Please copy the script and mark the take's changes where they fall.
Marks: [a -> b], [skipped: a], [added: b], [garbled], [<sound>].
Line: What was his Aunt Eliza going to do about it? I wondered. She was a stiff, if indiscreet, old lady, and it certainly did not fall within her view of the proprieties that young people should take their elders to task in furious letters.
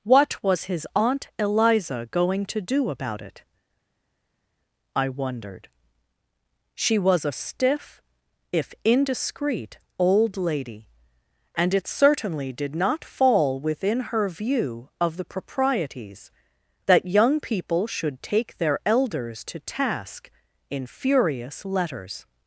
What was his Aunt Eliza going to do about it? I wondered. She was a stiff, if indiscreet, old lady, and it certainly did not fall within her view of the proprieties that young people should take their elders to task in furious letters.